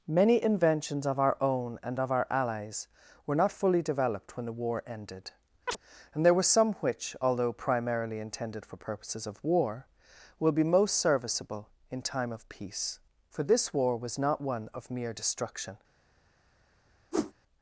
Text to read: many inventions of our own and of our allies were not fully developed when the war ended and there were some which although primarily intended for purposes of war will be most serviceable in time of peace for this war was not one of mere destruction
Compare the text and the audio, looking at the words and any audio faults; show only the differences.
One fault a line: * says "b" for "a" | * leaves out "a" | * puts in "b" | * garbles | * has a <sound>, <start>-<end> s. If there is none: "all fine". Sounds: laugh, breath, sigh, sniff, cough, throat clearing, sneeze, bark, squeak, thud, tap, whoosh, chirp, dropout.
* has a chirp, 5.7-5.8 s
* has a whoosh, 17.1-17.3 s